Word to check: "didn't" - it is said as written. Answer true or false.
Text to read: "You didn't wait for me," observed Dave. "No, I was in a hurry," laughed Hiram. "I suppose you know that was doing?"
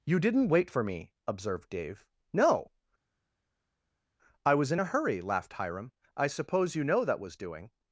true